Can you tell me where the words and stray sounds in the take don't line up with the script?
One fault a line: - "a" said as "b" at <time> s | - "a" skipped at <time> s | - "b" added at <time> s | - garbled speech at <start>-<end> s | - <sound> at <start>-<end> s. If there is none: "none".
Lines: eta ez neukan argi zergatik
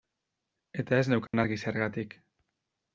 - dropout at 1.3-1.3 s